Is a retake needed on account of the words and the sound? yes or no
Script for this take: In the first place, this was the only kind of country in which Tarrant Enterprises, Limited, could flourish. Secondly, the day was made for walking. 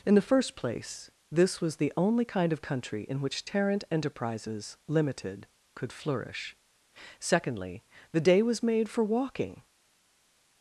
no